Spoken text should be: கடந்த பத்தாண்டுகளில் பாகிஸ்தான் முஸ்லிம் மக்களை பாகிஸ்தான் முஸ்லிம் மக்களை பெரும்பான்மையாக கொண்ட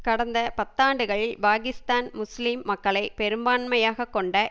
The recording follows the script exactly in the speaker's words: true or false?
false